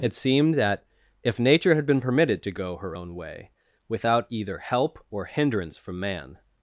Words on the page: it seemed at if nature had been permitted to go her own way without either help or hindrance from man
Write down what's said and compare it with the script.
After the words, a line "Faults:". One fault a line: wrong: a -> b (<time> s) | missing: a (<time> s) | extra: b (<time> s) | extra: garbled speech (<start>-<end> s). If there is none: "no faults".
it seemed that if nature had been permitted to go her own way without either help or hindrance from man
Faults:
wrong: at -> that (0.6 s)